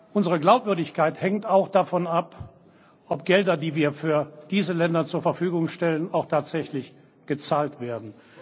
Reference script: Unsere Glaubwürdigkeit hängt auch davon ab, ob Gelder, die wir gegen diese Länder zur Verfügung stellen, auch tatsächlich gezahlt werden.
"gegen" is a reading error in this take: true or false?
true